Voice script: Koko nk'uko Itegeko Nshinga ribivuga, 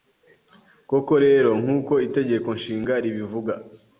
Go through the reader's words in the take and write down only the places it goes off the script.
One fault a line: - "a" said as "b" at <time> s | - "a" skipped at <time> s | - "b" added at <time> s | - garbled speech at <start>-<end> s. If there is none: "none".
- "rero" added at 1.2 s